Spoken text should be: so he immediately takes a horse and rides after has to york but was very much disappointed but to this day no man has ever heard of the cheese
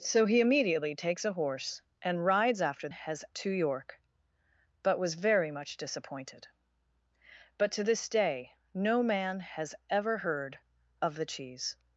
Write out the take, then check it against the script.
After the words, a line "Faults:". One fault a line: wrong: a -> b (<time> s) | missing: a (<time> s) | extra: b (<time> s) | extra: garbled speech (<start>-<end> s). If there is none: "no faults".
so he immediately takes a horse and rides after has to york but was very much disappointed but to this day no man has ever heard of the cheese
Faults:
no faults